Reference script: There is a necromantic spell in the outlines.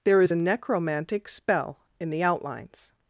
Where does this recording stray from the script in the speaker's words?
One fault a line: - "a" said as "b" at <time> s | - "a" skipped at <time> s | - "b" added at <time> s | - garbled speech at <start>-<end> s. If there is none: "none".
none